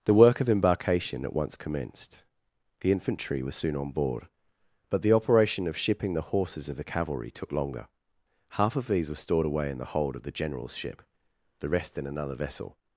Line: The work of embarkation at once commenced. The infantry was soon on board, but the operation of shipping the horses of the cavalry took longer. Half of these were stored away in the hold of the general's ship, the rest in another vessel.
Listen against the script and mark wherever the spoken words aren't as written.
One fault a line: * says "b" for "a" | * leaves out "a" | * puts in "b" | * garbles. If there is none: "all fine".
all fine